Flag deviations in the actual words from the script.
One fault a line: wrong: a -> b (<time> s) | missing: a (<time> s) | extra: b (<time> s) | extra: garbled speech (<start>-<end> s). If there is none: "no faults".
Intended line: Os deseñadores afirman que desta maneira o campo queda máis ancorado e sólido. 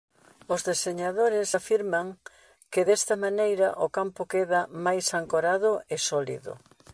no faults